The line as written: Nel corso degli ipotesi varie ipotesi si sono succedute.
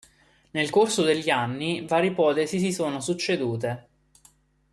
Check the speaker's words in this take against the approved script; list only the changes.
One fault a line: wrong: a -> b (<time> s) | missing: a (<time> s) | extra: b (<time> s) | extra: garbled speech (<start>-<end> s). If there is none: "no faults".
wrong: ipotesi -> anni (1.3 s)